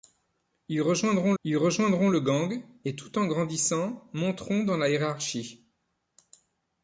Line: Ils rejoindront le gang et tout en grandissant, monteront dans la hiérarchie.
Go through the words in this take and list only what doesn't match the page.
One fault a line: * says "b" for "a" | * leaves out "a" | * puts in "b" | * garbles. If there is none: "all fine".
* puts in "ils rejoindront"